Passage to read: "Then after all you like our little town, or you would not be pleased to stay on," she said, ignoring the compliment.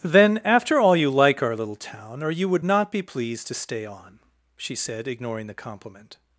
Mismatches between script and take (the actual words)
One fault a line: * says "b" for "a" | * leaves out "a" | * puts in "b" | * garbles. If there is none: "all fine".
all fine